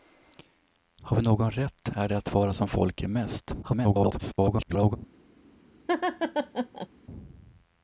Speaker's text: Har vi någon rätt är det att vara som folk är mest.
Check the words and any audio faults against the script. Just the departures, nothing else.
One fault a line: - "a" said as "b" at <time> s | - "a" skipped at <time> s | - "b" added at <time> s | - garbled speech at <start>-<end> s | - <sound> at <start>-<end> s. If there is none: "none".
- garbled speech at 3.6-5.0 s
- laugh at 5.9-6.9 s